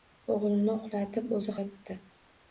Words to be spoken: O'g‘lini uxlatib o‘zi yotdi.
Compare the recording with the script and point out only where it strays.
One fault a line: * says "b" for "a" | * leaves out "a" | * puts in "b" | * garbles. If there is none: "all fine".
all fine